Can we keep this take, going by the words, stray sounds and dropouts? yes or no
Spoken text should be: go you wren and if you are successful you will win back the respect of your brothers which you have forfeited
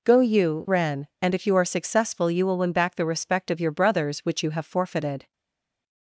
yes